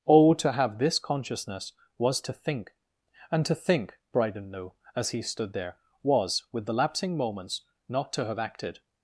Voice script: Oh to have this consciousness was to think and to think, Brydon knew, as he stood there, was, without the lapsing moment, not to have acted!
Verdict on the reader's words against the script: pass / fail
fail